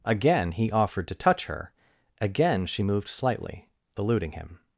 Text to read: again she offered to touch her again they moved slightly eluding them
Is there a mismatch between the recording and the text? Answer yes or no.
yes